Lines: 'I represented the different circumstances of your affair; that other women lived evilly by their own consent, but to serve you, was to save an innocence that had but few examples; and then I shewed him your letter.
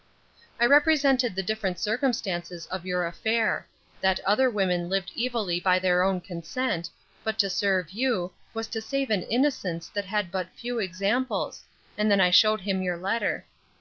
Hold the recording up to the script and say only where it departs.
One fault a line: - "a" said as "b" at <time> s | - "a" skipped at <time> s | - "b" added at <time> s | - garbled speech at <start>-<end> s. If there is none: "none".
none